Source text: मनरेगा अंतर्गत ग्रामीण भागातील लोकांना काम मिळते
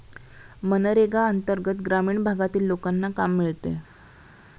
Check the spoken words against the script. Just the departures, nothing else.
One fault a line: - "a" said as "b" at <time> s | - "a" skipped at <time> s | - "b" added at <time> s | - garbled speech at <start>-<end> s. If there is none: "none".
none